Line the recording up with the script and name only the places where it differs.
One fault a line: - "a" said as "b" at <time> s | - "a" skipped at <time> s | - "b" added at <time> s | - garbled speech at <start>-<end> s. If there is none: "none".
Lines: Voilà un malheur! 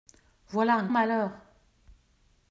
none